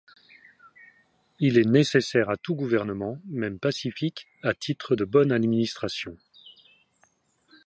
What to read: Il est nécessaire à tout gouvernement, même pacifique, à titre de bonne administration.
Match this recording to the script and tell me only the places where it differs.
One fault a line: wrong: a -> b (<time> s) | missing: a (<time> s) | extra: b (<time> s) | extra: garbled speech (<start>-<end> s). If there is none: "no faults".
no faults